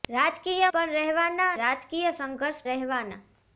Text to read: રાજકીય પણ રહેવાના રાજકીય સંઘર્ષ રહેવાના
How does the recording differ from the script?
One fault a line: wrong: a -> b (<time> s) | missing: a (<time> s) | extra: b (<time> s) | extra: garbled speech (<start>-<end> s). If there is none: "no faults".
no faults